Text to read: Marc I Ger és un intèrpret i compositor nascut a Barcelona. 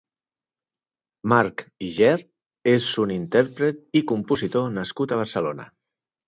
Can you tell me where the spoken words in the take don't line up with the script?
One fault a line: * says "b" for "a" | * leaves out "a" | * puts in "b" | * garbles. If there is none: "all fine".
all fine